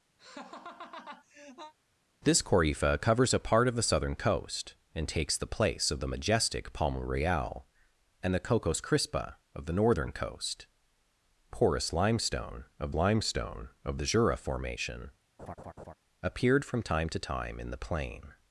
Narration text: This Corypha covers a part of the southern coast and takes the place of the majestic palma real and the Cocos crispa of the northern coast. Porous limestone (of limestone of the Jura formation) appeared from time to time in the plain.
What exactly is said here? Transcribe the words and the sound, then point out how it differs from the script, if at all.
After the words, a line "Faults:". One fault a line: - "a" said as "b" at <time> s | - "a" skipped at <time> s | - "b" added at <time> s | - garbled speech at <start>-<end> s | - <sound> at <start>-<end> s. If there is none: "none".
This Corypha covers a part of the southern coast and takes the place of the majestic palma real and the Cocos crispa of the northern coast. Porous limestone (of limestone of the Jura formation) appeared from time to time in the plain.
Faults:
- laugh at 0.2-1.7 s
- laugh at 15.4-15.9 s